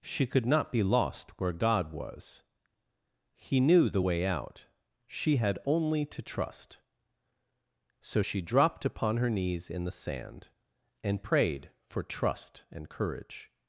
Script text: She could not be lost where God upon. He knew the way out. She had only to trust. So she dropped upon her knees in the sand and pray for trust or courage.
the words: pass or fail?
fail